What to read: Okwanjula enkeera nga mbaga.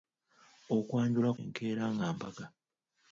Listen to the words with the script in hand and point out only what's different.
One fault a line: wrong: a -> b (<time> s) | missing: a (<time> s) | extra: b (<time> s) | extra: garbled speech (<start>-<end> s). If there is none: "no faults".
no faults